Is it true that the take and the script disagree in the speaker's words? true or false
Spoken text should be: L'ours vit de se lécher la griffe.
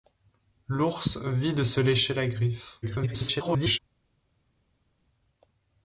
true